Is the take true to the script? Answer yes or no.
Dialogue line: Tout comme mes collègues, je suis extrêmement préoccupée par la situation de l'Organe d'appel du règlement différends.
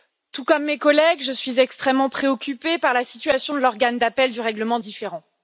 yes